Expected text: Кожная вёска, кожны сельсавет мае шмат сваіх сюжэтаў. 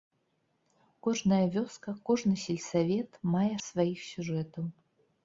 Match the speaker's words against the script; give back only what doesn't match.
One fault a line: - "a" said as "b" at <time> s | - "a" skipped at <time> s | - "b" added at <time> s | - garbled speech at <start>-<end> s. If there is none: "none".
- "шмат" skipped at 3.5 s